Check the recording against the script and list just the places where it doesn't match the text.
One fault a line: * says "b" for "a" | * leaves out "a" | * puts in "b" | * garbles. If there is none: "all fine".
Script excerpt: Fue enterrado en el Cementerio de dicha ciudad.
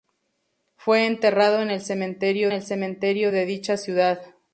* puts in "el Cementerio"